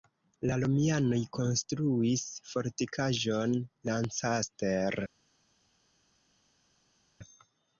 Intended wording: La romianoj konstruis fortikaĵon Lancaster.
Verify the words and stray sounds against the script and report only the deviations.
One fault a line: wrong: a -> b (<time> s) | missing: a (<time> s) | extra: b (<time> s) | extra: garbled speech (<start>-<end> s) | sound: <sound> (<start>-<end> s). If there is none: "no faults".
no faults